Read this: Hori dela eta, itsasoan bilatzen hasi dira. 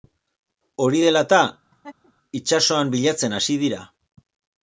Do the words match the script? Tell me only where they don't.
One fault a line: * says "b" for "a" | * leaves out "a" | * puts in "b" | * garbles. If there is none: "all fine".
all fine